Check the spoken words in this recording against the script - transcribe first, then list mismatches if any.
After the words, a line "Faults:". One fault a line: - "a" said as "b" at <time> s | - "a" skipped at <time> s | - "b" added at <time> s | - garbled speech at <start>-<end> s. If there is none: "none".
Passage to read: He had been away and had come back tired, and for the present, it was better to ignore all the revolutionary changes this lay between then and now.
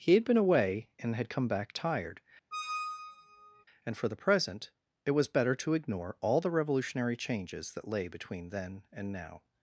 He had been away and had come back tired, and for the present, it was better to ignore all the revolutionary changes that lay between then and now.
Faults:
- "this" said as "that" at 7.7 s